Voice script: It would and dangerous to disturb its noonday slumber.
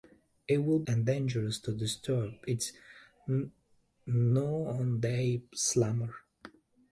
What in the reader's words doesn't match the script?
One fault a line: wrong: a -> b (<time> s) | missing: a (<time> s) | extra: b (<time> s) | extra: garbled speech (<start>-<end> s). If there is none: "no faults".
no faults